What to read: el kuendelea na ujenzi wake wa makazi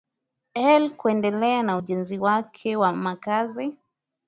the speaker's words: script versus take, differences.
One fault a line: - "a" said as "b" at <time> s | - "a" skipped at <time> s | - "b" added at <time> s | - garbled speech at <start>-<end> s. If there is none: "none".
none